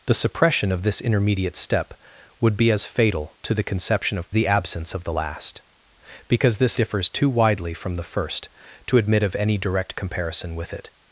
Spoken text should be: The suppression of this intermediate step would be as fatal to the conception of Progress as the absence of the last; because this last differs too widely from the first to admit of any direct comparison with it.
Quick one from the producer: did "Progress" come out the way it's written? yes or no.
no